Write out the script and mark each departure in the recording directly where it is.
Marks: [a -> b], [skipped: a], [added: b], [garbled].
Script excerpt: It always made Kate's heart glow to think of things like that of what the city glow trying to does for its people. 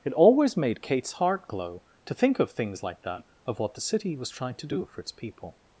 It always made Kate's heart glow to think of things like that of what the city [glow -> was] trying to [does -> do] for its people.